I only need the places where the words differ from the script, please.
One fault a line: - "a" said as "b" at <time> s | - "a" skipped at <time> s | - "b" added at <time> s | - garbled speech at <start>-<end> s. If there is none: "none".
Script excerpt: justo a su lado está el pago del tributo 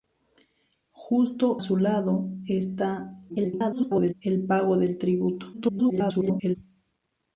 - "a" skipped at 1.6 s
- garbled speech at 3.3-4.1 s
- garbled speech at 5.5-6.6 s